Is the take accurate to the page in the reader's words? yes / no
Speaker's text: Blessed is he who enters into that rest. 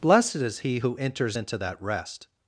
yes